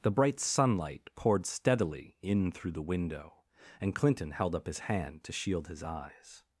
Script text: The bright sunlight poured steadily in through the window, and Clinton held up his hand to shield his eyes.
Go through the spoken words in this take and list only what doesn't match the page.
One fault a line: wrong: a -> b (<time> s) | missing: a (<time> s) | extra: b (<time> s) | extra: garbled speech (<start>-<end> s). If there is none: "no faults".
no faults